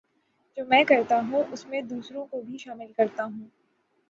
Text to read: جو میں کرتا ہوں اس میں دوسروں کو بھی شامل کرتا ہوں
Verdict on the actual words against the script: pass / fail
pass